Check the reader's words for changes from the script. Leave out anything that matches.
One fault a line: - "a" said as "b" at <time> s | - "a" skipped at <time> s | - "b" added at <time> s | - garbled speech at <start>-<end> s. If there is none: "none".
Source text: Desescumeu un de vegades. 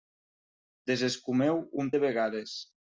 none